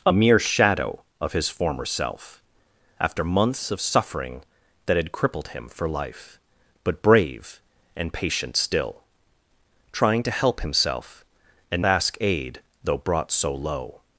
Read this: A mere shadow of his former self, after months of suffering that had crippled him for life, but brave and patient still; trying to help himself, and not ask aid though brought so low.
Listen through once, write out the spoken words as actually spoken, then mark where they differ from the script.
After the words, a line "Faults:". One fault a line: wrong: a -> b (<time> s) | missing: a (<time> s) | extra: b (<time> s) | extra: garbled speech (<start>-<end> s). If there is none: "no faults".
A mere shadow of his former self, after months of suffering that had crippled him for life, but brave and patient still; trying to help himself, and ask aid though brought so low.
Faults:
missing: not (11.8 s)